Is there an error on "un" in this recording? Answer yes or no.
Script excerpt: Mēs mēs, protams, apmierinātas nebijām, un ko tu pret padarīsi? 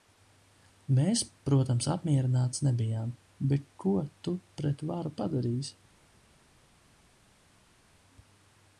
yes